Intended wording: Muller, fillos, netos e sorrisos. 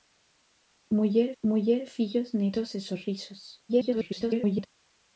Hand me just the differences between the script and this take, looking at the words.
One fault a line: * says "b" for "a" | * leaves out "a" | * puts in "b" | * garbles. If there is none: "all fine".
* puts in "muller"
* garbles